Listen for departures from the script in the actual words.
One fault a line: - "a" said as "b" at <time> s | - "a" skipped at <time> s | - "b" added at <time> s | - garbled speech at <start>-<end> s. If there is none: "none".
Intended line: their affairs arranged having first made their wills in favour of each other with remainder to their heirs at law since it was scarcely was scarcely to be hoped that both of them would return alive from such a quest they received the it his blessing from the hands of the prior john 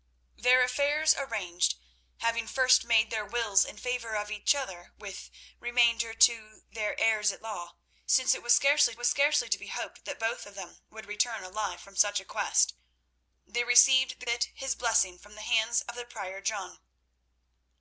none